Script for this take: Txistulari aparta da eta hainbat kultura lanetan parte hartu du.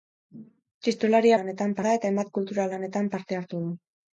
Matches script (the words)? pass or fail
fail